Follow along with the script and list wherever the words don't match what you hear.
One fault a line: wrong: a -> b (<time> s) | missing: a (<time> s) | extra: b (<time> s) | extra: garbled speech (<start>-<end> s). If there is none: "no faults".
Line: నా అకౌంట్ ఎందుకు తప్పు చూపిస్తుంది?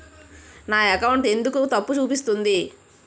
no faults